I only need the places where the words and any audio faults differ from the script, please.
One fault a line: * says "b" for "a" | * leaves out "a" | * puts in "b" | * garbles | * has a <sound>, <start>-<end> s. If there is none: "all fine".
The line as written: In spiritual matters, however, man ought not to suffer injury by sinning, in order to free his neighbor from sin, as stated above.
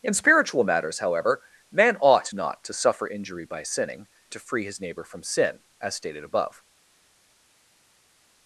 * leaves out "in order"